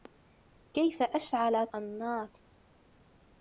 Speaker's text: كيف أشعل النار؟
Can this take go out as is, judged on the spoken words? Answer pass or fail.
pass